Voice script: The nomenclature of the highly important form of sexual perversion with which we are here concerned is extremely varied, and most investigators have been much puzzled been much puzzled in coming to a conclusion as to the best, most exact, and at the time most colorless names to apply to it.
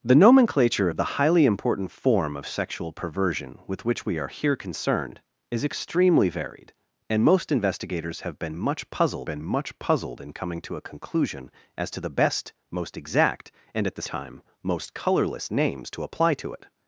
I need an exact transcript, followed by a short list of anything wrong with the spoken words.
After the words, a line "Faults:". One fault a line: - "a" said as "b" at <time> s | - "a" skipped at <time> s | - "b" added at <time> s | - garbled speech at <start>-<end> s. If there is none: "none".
The nomenclature of the highly important form of sexual perversion with which we are here concerned is extremely varied, and most investigators have been much puzzled been much puzzled in coming to a conclusion as to the best, most exact, and at the time most colorless names to apply to it.
Faults:
none